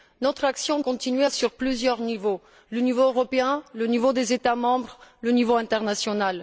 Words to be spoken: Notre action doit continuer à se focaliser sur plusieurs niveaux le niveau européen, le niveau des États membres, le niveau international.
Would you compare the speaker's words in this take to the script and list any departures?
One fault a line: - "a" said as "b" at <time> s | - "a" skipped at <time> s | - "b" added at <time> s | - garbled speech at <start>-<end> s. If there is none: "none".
- "doit" skipped at 0.8 s
- "se focaliser" skipped at 1.3 s